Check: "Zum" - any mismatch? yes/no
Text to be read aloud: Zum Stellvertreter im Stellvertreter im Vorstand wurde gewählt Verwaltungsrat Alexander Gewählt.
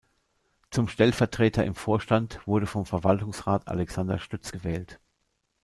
no